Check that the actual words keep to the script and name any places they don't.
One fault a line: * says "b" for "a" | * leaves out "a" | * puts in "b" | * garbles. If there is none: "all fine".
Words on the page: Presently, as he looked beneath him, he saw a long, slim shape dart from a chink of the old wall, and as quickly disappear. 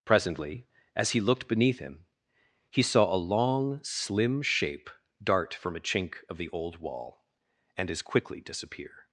all fine